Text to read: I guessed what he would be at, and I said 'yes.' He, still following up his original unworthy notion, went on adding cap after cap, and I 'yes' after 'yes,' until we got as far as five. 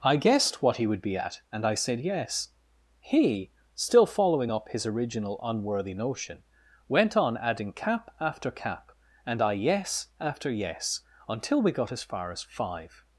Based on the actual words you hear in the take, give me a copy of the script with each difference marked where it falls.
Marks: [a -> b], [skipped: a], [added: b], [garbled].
I guessed what he would be at, and I said 'yes.' He, still following up his original unworthy notion, went on adding cap after cap, and I 'yes' after 'yes,' until we got as far as five.